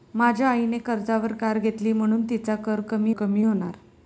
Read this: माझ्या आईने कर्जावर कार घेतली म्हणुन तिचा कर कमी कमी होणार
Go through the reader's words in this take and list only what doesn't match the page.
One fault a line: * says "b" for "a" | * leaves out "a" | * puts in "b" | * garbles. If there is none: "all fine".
all fine